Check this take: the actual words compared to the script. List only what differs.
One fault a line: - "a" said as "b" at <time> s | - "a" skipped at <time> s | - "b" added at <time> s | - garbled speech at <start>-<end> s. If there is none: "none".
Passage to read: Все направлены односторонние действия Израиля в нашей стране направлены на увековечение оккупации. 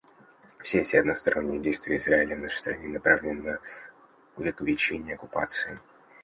- "направлены" said as "эти" at 0.8 s